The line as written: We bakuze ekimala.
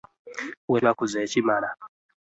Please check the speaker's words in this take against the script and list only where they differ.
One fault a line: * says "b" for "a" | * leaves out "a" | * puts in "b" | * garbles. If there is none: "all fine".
all fine